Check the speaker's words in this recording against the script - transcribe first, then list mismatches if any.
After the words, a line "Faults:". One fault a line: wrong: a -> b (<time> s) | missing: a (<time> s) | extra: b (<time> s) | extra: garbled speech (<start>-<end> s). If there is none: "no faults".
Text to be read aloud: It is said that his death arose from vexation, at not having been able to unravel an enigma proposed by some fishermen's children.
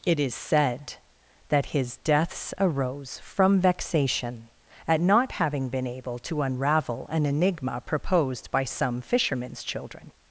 It is said that his deaths arose from vexation, at not having been able to unravel an enigma proposed by some fishermen's children.
Faults:
wrong: death -> deaths (2.0 s)